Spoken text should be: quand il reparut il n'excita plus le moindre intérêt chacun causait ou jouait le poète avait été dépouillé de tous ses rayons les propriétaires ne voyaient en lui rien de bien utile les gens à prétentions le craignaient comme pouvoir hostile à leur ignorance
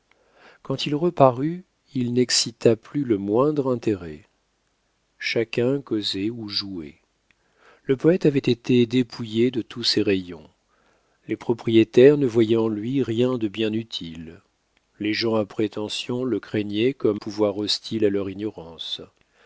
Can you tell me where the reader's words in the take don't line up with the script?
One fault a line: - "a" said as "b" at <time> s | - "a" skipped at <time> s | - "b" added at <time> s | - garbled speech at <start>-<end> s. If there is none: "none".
none